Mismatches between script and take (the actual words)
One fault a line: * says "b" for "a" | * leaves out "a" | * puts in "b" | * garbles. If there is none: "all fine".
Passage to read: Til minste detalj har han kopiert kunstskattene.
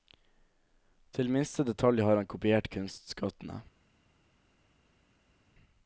all fine